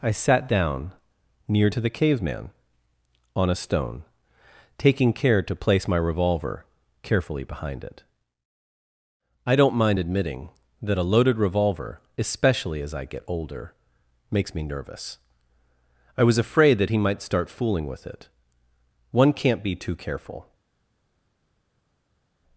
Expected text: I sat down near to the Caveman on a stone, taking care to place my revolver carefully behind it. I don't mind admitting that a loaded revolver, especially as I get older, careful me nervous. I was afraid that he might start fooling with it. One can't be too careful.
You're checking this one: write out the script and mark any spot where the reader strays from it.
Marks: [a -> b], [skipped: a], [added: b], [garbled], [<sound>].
I sat down near to the Caveman on a stone, taking care to place my revolver carefully behind it. I don't mind admitting that a loaded revolver, especially as I get older, [careful -> makes] me nervous. I was afraid that he might start fooling with it. One can't be too careful.